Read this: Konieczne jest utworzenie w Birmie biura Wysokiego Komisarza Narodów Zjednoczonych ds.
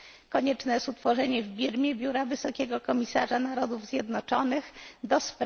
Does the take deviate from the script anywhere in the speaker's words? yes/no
no